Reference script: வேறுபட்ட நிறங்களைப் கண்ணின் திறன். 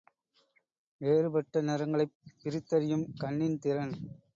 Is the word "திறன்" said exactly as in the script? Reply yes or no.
yes